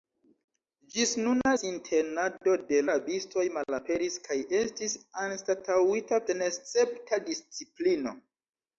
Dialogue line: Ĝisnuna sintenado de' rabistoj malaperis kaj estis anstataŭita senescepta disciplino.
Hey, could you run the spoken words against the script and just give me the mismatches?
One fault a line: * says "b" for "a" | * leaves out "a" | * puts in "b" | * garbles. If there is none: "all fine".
all fine